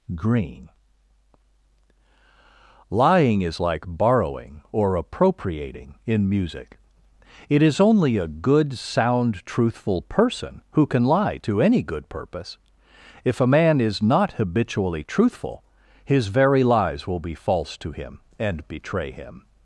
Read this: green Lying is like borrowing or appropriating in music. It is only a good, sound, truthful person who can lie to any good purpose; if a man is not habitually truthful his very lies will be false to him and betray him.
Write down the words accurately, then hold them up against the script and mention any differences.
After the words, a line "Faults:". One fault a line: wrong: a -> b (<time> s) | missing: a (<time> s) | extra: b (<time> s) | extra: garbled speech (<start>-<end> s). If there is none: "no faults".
green Lying is like borrowing or appropriating in music. It is only a good, sound, truthful person who can lie to any good purpose; if a man is not habitually truthful his very lies will be false to him and betray him.
Faults:
no faults